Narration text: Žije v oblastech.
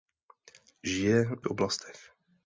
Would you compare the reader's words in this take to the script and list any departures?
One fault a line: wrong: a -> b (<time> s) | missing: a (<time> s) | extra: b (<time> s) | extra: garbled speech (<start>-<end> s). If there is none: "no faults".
no faults